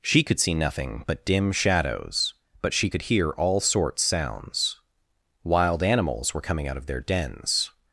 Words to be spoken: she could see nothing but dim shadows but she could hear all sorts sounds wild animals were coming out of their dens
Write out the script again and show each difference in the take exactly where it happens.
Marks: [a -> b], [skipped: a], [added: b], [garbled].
she could see nothing but dim shadows but she could hear all sorts sounds wild animals were coming out of their dens